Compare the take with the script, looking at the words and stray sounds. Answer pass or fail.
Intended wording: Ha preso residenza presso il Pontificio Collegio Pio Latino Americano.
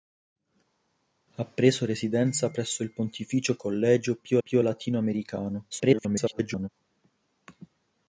fail